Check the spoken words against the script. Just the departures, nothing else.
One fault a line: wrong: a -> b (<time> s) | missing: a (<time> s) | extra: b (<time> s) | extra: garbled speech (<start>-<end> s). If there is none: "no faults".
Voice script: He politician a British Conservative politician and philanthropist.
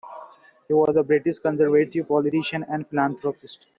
wrong: politician -> was (0.7 s)